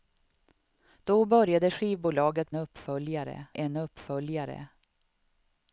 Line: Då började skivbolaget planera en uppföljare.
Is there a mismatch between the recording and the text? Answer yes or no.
yes